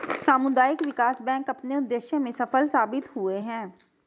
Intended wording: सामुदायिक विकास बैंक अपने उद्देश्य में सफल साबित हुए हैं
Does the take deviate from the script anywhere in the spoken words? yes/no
no